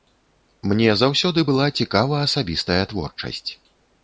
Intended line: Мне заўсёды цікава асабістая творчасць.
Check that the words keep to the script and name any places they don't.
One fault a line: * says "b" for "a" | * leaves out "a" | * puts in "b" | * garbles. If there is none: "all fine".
* puts in "была"